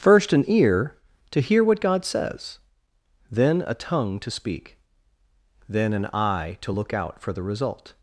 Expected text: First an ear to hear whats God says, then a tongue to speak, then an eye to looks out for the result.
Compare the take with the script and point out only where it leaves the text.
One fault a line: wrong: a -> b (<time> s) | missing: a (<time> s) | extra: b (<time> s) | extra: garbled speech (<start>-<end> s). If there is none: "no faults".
wrong: whats -> what (1.6 s)
wrong: looks -> look (6.7 s)